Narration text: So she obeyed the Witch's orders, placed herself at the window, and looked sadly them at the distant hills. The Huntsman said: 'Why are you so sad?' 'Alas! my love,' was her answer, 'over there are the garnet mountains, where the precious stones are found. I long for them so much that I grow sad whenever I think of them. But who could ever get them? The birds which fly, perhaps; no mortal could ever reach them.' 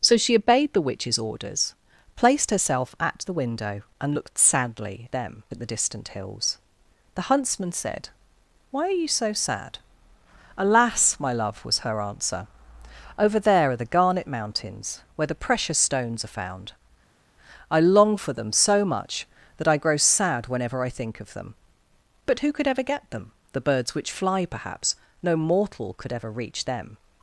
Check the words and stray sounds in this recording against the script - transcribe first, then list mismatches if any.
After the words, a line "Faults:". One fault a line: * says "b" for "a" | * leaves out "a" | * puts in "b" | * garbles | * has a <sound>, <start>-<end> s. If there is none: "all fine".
So she obeyed the Witch's orders, placed herself at the window, and looked sadly them at the distant hills. The Huntsman said: 'Why are you so sad?' 'Alas! my love,' was her answer, 'over there are the garnet mountains, where the precious stones are found. I long for them so much that I grow sad whenever I think of them. But who could ever get them? The birds which fly, perhaps; no mortal could ever reach them.'
Faults:
all fine